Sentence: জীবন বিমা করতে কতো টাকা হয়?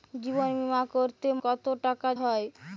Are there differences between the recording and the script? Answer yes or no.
no